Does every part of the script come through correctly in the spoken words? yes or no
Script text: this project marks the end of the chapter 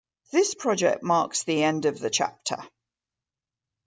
yes